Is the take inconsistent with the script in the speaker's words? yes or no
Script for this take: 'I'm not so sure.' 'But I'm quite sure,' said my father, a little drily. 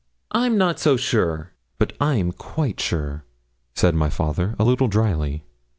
no